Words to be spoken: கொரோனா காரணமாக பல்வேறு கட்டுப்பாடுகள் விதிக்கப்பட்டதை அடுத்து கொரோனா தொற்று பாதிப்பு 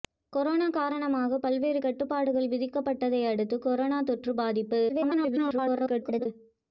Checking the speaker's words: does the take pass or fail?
fail